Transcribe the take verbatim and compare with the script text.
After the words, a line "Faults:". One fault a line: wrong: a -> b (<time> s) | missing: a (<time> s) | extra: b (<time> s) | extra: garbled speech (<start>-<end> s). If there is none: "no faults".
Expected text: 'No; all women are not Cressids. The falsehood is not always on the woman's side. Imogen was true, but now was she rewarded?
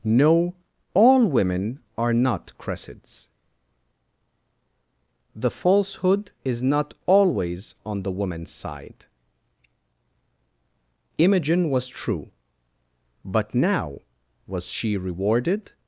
'No; all women are not Cressids. The falsehood is not always on the woman's side. Imogen was true, but now was she rewarded?
Faults:
no faults